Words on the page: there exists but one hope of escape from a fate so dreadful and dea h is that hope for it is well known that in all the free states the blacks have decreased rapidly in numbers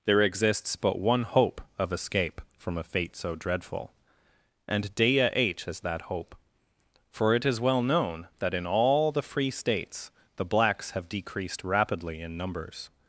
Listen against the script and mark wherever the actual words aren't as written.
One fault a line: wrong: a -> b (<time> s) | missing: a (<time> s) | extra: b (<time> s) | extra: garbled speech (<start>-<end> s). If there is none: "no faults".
no faults